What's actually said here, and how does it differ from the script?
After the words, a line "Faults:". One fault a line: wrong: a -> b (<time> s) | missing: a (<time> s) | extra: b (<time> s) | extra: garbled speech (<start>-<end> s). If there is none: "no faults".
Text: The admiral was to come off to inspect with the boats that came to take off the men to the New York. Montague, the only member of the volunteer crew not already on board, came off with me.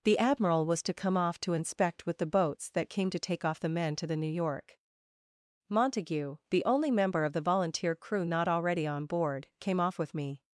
The admiral was to come off to inspect with the boats that came to take off the men to the New York. Montague, the only member of the volunteer crew not already on board, came off with me.
Faults:
no faults